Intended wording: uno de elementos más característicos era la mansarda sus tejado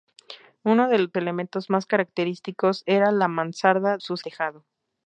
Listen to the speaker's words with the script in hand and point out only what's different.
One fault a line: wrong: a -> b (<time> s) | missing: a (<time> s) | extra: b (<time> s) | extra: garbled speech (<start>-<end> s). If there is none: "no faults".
no faults